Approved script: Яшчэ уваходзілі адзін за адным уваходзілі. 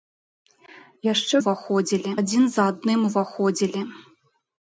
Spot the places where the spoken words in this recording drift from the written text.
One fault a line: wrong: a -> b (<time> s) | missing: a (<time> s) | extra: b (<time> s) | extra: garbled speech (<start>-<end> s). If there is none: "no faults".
no faults